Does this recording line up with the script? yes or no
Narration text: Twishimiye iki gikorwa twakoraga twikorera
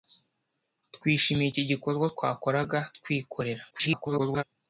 no